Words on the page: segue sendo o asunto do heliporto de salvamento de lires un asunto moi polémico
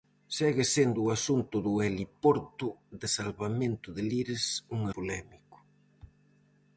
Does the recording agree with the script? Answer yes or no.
no